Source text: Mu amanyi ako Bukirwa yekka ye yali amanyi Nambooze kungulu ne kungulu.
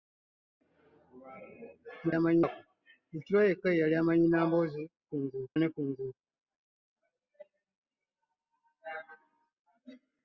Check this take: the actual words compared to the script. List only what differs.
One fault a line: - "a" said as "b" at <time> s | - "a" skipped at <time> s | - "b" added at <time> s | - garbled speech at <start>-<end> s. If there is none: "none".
none